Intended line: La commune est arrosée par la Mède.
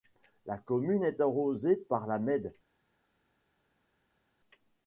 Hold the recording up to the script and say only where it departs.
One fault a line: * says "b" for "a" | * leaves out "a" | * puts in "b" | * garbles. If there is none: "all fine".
all fine